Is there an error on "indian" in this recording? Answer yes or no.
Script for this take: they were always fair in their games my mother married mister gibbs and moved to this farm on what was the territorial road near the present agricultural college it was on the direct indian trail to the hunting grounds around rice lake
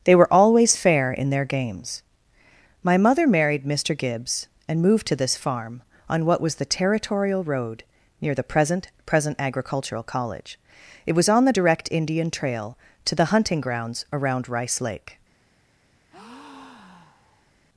no